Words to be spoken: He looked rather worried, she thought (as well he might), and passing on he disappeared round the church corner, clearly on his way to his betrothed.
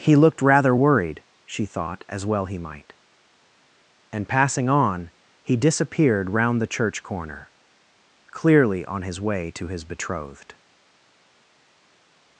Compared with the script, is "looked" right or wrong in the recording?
right